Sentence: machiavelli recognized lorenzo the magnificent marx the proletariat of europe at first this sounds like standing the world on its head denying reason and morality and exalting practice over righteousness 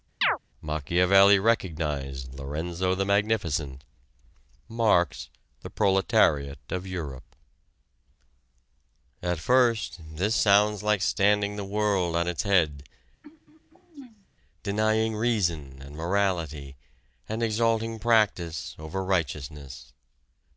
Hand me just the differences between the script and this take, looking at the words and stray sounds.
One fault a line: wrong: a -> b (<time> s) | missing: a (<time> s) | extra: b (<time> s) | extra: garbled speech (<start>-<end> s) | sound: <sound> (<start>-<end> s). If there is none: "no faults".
sound: chirp (0.2-0.4 s)
sound: throat clearing (13.2-14.3 s)